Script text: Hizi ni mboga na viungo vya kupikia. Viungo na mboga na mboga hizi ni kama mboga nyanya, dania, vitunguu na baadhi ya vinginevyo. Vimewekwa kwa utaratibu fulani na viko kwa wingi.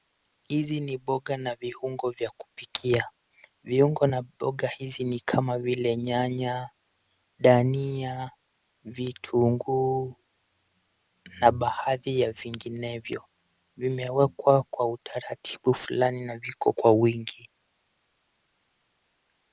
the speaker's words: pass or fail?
fail